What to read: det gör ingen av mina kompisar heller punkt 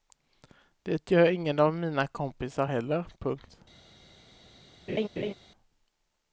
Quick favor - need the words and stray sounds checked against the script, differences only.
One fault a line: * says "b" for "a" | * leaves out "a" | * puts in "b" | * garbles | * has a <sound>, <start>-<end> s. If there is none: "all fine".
* has a laugh, 4.9-5.3 s